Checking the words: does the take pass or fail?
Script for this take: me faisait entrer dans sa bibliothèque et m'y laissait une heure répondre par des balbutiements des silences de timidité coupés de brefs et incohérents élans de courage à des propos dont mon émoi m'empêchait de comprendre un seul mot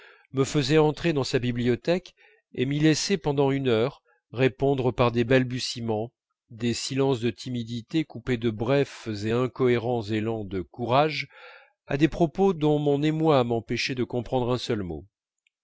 fail